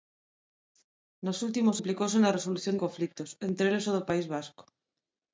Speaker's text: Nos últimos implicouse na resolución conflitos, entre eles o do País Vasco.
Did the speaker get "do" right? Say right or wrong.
right